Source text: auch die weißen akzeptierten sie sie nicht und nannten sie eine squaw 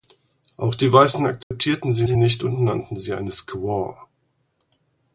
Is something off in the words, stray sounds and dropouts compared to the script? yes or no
yes